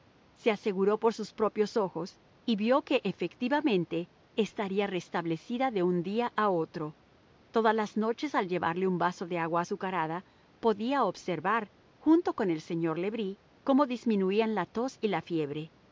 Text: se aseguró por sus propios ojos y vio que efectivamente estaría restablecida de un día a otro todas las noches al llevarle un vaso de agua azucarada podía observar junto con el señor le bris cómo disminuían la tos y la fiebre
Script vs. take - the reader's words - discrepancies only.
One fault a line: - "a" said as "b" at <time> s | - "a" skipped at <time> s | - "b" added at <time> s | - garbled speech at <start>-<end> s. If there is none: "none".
none